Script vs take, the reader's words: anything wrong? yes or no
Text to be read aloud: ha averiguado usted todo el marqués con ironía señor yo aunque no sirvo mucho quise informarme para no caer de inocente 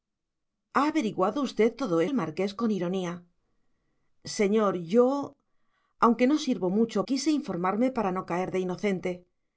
no